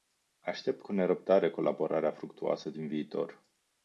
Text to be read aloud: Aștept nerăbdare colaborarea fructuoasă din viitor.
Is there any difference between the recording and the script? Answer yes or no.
yes